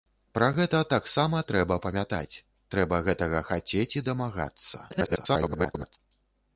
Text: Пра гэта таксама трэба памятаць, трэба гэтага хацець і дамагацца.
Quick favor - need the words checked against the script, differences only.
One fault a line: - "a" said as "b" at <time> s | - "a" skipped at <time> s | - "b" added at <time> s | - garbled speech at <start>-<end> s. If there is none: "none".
- garbled speech at 4.9-6.0 s